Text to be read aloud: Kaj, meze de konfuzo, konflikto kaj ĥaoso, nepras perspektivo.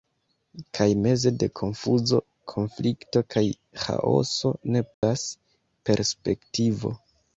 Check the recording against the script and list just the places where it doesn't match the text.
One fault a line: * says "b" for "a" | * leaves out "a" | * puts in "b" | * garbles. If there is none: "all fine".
all fine